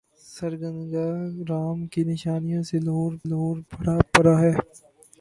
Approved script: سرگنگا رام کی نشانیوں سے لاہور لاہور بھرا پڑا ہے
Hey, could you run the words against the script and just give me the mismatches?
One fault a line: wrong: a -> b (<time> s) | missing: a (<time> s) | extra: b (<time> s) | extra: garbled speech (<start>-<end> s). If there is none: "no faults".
no faults